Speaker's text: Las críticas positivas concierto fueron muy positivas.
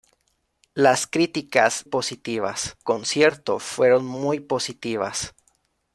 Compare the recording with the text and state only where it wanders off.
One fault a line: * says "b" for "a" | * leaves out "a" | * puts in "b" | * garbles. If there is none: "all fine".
all fine